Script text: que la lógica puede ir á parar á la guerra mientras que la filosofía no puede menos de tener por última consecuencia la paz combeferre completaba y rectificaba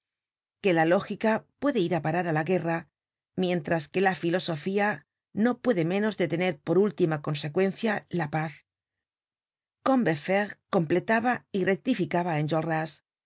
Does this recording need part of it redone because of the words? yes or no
no